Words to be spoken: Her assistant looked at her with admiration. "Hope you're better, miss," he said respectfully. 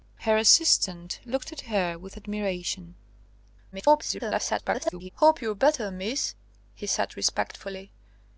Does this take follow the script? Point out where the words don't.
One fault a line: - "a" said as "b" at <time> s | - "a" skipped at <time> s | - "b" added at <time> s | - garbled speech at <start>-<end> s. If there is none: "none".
- garbled speech at 3.7-5.1 s